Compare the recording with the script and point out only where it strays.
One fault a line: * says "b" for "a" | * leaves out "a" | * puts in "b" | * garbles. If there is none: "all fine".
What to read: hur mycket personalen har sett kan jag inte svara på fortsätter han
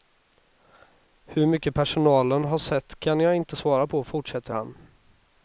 all fine